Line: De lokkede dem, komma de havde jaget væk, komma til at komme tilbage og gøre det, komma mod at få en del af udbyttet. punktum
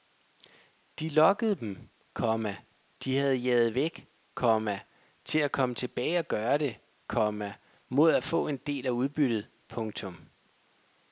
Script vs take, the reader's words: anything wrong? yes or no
no